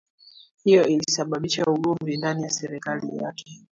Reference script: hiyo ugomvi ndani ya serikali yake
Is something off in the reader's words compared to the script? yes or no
yes